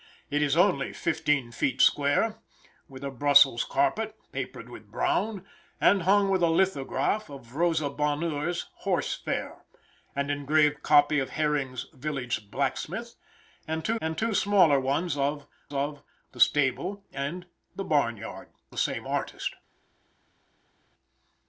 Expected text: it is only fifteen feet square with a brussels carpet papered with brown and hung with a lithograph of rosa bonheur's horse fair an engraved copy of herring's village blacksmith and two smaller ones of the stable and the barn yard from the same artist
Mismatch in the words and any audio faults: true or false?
true